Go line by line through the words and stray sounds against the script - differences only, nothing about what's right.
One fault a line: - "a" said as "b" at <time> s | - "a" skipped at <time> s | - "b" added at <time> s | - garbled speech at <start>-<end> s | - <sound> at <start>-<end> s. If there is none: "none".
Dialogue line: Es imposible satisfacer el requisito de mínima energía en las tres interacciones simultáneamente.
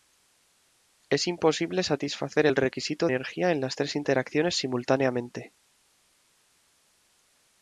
- "de mínima" skipped at 3.1 s